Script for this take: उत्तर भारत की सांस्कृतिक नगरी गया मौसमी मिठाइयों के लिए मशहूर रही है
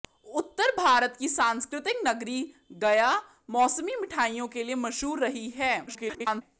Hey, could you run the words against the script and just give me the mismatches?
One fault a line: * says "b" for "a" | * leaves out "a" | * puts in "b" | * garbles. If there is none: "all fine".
* garbles